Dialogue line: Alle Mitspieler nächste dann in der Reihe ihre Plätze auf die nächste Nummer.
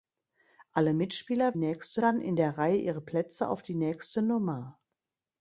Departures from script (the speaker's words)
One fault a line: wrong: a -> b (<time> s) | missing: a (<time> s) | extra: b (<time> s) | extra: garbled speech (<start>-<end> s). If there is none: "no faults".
no faults